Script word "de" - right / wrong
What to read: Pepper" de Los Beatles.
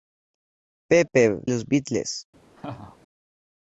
wrong